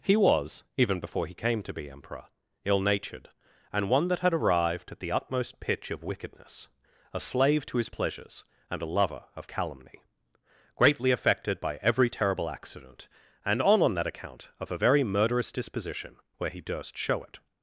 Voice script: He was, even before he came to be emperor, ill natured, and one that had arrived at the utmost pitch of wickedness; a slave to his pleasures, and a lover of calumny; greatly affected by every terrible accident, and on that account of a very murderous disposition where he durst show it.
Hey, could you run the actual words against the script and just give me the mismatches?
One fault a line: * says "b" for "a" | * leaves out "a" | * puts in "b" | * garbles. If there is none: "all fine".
* puts in "on"